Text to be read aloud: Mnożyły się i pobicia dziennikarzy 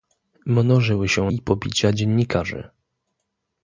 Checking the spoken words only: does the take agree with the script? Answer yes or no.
yes